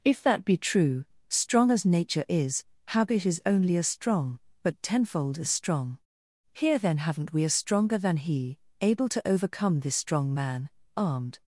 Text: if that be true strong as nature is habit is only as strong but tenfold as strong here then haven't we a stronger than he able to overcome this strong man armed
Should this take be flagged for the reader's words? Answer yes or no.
no